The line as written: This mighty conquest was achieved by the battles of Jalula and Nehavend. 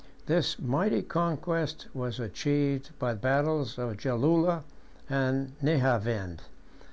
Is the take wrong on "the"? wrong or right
wrong